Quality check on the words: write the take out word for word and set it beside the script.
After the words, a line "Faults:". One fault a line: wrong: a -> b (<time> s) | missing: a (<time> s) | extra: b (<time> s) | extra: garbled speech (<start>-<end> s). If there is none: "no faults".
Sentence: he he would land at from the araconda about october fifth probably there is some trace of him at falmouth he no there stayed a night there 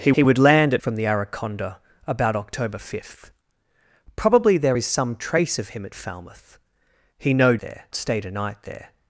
he he would land at from the araconda about october fifth probably there is some trace of him at falmouth he no there stayed a night there
Faults:
no faults